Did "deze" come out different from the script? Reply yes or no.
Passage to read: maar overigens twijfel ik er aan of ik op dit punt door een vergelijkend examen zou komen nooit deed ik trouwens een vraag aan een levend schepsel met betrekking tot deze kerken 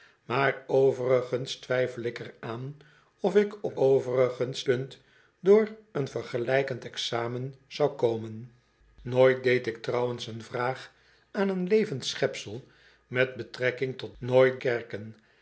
yes